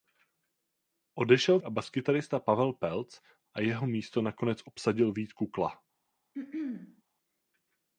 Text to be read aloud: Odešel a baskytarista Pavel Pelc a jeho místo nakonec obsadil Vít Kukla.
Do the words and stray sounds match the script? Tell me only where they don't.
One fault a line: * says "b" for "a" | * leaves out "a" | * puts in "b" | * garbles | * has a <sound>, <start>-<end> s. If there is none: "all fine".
* has a throat clearing, 6.3-7.0 s